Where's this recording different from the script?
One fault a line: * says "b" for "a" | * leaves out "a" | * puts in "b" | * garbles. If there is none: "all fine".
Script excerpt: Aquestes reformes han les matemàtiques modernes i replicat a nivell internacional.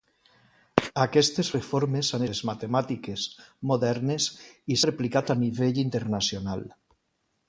all fine